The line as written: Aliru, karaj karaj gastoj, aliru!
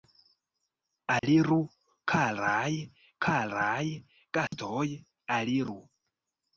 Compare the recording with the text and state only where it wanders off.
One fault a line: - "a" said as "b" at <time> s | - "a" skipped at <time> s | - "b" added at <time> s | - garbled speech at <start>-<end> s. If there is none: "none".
none